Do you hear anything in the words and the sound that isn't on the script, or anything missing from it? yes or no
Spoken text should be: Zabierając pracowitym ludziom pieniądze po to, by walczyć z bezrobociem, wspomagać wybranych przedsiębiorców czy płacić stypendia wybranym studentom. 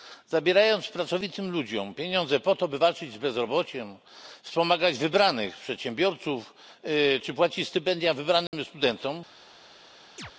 yes